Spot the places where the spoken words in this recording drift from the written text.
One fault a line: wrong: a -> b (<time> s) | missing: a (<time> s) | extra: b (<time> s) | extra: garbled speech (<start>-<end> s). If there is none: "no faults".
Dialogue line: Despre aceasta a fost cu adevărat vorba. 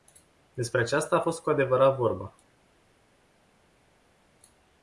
no faults